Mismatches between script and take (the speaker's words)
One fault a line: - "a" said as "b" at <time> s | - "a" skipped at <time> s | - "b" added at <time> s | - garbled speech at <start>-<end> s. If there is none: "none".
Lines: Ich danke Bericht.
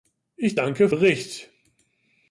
none